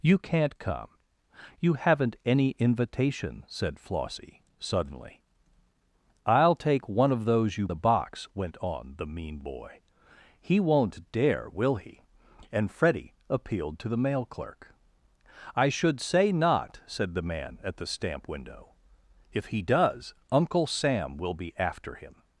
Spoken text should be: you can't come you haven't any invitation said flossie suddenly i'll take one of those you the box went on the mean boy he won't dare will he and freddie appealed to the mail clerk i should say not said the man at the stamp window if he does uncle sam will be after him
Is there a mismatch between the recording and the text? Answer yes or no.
no